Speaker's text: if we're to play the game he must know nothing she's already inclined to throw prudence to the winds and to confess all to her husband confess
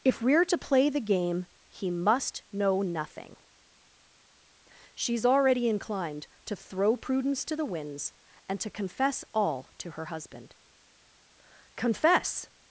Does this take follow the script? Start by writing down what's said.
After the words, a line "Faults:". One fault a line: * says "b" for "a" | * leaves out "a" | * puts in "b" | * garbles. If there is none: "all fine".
if we're to play the game he must know nothing she's already inclined to throw prudence to the winds and to confess all to her husband confess
Faults:
all fine